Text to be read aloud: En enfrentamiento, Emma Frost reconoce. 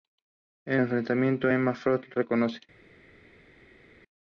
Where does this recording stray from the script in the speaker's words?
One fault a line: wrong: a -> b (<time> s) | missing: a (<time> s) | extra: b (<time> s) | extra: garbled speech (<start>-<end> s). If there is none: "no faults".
no faults